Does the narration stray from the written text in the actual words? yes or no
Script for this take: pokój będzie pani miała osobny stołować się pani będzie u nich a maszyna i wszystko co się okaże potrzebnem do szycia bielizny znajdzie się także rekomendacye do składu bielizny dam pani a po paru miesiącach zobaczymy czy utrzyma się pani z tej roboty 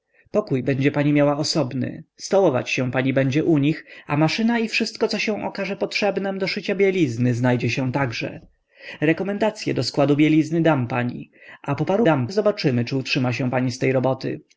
yes